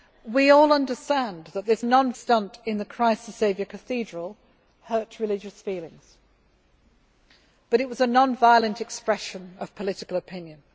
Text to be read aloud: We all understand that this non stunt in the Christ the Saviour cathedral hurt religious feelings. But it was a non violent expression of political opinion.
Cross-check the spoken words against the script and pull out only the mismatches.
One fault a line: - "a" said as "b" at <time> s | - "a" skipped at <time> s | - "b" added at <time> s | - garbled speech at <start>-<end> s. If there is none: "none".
none